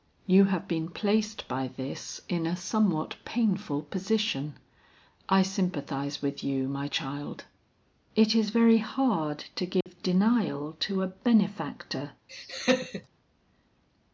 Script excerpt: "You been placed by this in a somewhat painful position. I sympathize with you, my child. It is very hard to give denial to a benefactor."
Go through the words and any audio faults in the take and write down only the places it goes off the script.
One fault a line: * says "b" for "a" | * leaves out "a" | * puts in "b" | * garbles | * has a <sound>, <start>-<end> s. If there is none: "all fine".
* puts in "have"
* has a dropout, 9.8-9.9 s
* has a laugh, 12.3-13.1 s